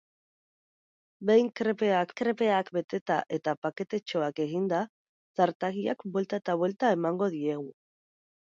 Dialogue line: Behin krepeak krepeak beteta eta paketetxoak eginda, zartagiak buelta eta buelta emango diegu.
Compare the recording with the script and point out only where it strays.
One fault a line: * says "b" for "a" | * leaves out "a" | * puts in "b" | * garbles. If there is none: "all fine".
all fine